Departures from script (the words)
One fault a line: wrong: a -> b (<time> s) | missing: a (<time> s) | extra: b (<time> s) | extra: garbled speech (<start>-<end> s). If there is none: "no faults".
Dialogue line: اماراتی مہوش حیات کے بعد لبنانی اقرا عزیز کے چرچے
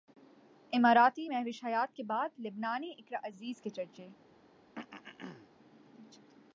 no faults